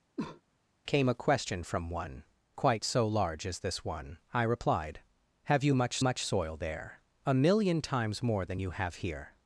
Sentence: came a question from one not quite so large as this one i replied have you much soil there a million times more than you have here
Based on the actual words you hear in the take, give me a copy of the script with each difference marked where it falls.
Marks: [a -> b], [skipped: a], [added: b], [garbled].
came a question from one [skipped: not] quite so large as this one i replied have you much [added: much] soil there a million times more than you have here